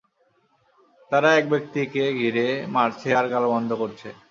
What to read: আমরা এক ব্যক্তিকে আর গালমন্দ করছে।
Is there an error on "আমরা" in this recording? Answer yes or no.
yes